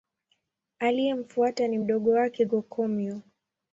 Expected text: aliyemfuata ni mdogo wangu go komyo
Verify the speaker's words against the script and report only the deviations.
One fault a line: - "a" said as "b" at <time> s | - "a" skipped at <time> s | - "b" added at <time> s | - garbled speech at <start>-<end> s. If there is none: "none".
- "wangu" said as "wake" at 2.1 s